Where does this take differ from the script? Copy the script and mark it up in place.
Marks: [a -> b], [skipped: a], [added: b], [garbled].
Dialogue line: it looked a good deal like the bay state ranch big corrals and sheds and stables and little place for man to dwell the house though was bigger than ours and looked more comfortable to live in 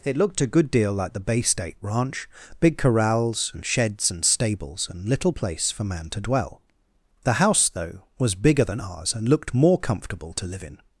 it looked a good deal like the bay state ranch big corrals and sheds and stables and little place for man to dwell the house though was bigger than ours and looked more comfortable to live in